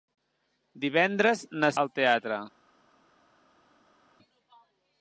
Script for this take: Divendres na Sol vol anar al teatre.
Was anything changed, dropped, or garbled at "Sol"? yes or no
yes